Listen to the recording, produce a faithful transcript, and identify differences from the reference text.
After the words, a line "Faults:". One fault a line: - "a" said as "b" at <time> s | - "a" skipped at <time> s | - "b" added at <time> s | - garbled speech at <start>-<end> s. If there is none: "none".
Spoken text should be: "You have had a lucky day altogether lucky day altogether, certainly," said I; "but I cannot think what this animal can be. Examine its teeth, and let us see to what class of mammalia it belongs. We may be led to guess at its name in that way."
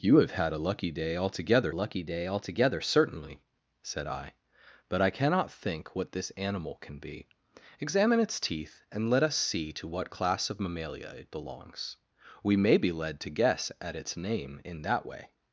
"You have had a lucky day altogether lucky day altogether, certainly," said I; "but I cannot think what this animal can be. Examine its teeth, and let us see to what class of mammalia it belongs. We may be led to guess at its name in that way."
Faults:
none